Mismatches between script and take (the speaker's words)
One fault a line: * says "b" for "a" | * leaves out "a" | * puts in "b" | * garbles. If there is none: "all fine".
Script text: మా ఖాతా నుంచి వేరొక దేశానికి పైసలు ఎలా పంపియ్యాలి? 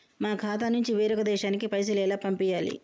all fine